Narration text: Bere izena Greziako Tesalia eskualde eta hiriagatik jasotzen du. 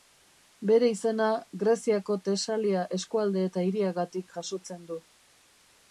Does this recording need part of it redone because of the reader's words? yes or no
no